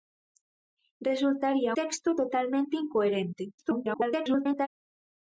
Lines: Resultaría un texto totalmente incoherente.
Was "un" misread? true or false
true